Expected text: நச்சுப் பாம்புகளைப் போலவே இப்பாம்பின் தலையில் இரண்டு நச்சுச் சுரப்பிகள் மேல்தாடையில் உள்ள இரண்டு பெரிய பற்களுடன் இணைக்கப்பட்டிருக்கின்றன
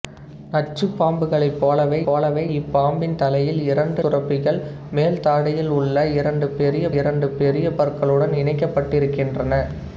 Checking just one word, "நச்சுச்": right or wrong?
wrong